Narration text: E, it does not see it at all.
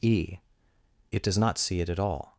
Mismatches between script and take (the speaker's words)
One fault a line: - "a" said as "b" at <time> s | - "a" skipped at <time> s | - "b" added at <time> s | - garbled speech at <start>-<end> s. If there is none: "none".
none